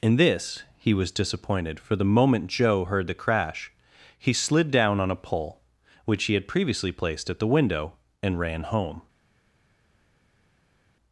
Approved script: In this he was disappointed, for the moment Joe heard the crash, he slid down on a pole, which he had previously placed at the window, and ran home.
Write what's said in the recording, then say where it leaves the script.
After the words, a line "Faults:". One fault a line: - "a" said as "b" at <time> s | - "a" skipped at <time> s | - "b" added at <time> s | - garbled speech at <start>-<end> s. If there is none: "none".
In this he was disappointed, for the moment Joe heard the crash, he slid down on a pole, which he had previously placed at the window, and ran home.
Faults:
none